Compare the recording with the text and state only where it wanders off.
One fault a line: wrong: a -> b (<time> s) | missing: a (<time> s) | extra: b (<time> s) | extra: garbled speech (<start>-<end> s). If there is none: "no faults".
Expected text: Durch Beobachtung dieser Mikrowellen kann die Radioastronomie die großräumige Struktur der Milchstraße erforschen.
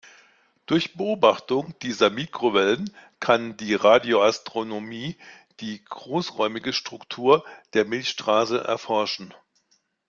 no faults